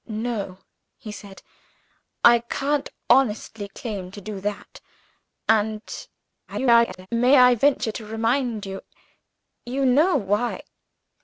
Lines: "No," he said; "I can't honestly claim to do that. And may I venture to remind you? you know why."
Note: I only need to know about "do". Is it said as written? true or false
true